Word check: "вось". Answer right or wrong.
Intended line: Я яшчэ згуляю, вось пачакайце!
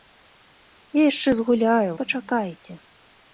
wrong